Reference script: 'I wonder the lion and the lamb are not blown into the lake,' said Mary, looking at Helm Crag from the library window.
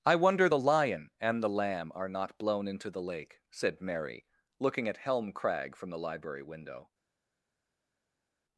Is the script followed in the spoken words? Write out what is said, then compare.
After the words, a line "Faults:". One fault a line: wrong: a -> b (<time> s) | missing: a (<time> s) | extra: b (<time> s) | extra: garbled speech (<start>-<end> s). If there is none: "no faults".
'I wonder the lion and the lamb are not blown into the lake,' said Mary, looking at Helm Crag from the library window.
Faults:
no faults